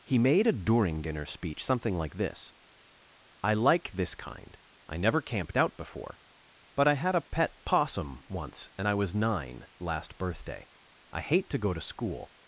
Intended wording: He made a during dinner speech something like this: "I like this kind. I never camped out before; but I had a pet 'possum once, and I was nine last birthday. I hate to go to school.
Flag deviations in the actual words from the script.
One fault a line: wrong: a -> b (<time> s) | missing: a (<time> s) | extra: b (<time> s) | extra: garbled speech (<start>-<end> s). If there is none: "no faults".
no faults